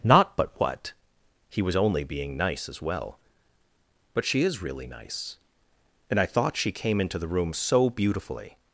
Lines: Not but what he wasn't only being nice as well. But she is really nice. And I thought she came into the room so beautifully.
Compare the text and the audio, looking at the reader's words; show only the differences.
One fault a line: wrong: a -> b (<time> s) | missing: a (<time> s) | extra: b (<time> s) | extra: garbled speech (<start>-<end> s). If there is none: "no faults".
wrong: wasn't -> was (1.6 s)